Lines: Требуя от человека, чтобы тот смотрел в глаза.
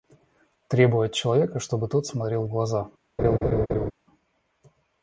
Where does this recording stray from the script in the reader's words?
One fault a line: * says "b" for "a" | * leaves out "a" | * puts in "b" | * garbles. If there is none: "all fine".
all fine